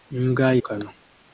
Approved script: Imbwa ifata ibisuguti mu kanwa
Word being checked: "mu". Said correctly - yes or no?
no